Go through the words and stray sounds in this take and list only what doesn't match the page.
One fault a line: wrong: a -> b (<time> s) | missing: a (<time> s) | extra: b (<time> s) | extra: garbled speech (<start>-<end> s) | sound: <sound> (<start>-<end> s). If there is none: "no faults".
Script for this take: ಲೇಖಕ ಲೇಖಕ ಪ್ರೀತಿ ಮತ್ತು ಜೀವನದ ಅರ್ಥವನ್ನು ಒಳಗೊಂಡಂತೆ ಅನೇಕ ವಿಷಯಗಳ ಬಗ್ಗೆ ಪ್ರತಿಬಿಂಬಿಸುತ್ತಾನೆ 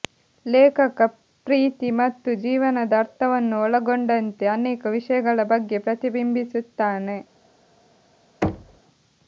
missing: ಲೇಖಕ (1.0 s)
sound: thud (8.4-8.8 s)